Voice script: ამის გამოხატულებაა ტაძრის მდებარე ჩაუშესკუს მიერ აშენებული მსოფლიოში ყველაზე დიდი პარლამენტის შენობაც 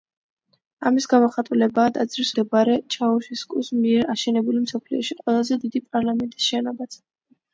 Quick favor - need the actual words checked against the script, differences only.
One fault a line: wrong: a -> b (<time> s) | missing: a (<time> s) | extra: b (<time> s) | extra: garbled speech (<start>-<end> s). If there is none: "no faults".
no faults